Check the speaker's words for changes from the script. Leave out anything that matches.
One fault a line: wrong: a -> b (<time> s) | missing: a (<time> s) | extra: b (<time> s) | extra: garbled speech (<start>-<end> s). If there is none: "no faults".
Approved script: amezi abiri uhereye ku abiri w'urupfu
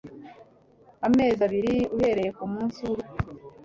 wrong: abiri -> munsi (2.5 s)